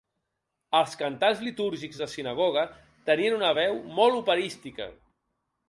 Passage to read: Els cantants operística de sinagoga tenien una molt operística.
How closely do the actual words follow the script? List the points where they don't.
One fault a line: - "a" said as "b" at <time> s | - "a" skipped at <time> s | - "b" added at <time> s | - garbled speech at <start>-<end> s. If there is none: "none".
- "operística" said as "litúrgics" at 1.5 s
- "veu" added at 3.6 s